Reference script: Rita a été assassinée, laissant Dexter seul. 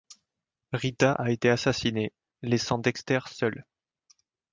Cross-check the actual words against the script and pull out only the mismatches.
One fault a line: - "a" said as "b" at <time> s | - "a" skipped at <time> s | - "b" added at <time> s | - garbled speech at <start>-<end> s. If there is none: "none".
none